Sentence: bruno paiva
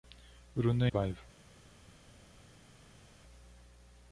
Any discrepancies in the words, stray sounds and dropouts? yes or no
no